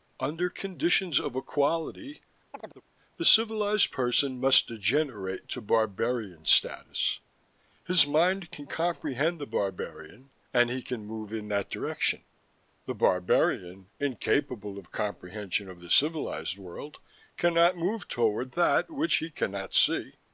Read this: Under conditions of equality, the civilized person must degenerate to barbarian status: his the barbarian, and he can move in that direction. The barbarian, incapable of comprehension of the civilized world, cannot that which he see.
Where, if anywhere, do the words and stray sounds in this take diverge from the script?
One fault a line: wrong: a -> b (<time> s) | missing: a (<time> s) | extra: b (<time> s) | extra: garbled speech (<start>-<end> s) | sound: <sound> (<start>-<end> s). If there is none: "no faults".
sound: chirp (2.5-2.8 s)
extra: mind can comprehend (8.1 s)
extra: move toward (17.7 s)
extra: cannot (19.3 s)